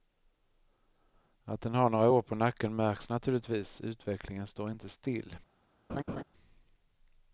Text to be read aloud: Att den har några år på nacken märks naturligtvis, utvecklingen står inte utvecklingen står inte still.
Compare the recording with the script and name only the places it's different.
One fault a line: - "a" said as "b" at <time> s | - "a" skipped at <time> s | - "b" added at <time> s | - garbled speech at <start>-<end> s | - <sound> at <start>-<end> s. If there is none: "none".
- "utvecklingen står inte" skipped at 4.9 s
- laugh at 5.9-6.2 s